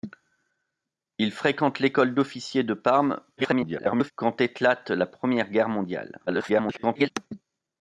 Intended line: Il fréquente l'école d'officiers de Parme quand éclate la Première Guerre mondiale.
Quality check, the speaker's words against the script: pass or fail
fail